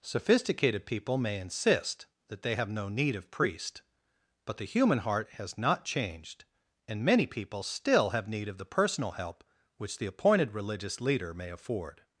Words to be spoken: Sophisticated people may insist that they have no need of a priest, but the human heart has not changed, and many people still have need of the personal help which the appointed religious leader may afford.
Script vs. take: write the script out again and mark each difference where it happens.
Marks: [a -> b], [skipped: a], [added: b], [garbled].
Sophisticated people may insist that they have no need of [skipped: a] priest, but the human heart has not changed, and many people still have need of the personal help which the appointed religious leader may afford.